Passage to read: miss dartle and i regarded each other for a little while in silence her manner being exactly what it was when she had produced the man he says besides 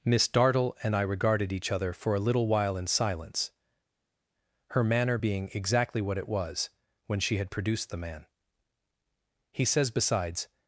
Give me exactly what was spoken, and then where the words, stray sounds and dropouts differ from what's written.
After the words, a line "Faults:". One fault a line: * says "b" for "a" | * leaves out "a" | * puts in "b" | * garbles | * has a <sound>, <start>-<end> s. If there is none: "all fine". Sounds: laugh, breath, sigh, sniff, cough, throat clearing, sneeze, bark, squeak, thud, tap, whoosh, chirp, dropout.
miss dartle and i regarded each other for a little while in silence her manner being exactly what it was when she had produced the man he says besides
Faults:
all fine